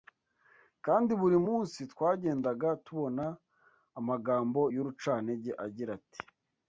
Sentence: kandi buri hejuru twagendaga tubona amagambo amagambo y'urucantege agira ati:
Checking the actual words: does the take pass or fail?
fail